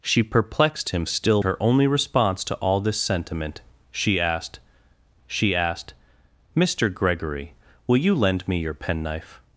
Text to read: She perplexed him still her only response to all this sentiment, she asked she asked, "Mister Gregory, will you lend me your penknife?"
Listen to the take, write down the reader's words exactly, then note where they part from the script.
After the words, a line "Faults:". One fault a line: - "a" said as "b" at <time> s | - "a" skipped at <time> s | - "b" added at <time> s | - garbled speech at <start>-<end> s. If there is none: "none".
She perplexed him still her only response to all this sentiment, she asked she asked, "Mister Gregory, will you lend me your penknife?"
Faults:
none